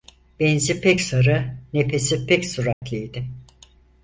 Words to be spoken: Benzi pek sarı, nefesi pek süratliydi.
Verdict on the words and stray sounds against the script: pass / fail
fail